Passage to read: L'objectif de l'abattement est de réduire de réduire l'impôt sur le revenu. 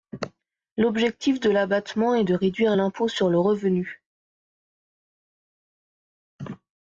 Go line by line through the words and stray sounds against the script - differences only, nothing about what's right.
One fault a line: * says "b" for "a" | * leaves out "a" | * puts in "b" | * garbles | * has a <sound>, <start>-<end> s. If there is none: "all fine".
* leaves out "de réduire"